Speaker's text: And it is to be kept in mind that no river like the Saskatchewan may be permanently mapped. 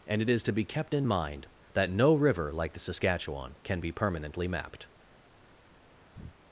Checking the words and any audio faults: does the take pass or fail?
fail